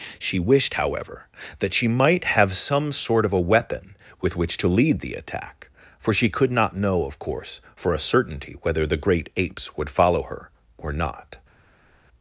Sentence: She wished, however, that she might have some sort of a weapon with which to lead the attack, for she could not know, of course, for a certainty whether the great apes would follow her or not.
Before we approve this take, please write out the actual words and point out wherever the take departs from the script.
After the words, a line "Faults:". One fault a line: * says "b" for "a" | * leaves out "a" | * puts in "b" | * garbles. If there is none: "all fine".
She wished, however, that she might have some sort of a weapon with which to lead the attack, for she could not know, of course, for a certainty whether the great apes would follow her or not.
Faults:
all fine